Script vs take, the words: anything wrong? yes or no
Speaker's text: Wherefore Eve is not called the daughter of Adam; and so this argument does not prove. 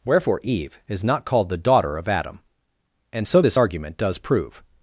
yes